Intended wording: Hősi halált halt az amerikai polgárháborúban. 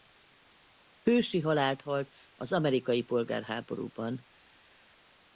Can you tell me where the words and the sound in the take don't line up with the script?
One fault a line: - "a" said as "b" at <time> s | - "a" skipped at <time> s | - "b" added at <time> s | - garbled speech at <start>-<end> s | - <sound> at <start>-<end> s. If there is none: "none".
none